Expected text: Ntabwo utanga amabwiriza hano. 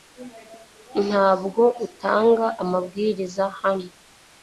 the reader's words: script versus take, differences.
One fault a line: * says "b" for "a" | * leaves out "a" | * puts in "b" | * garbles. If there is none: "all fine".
all fine